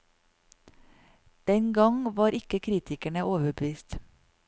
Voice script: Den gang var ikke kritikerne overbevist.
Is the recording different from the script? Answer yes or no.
no